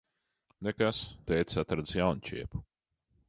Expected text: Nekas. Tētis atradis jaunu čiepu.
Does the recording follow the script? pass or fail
pass